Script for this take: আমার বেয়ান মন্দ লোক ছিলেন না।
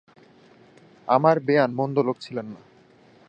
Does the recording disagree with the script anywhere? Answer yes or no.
no